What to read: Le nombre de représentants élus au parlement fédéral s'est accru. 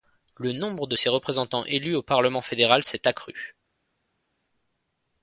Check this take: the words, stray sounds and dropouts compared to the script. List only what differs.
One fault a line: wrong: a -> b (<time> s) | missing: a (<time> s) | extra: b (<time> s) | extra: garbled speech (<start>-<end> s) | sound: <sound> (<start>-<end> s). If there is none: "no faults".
extra: ses (0.9 s)